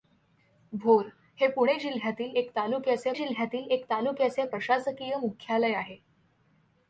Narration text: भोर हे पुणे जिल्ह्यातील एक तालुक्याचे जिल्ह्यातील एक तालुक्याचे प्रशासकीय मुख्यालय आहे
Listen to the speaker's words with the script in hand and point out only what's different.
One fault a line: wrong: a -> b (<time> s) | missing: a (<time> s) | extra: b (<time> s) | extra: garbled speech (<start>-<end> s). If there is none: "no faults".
no faults